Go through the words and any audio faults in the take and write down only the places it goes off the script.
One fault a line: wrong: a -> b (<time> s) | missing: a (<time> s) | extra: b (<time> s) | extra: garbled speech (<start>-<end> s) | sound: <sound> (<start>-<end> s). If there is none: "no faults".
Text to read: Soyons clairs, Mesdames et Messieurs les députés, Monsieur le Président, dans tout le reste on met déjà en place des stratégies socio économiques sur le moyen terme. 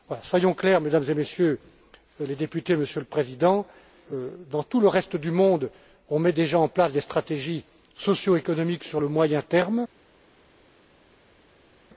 extra: du monde (5.2 s)